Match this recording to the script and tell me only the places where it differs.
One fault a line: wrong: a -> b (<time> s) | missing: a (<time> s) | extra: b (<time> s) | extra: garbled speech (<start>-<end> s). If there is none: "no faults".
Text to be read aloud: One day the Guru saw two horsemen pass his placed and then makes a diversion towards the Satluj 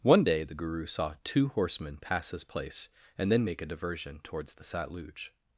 wrong: placed -> place (2.4 s)
wrong: makes -> make (3.4 s)